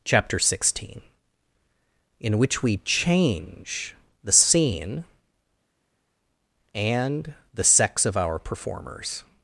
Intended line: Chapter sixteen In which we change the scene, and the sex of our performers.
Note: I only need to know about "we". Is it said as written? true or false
true